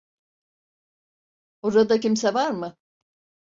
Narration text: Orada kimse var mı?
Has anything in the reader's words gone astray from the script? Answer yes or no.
no